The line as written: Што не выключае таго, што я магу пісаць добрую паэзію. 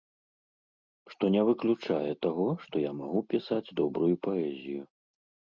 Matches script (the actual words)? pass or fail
pass